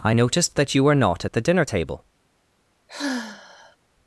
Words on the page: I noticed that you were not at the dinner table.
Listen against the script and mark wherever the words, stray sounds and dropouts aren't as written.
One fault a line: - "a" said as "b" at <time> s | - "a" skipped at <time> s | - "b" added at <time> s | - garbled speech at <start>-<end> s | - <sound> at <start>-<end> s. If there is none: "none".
- sigh at 2.9-3.8 s